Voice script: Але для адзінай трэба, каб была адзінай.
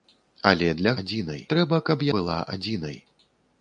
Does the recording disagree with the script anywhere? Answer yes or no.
no